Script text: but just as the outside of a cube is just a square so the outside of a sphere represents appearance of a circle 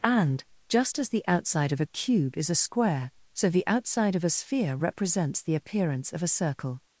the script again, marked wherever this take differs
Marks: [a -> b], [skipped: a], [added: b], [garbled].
[but -> and] just as the outside of a cube is [skipped: just] a square so the outside of a sphere represents [added: the] appearance of a circle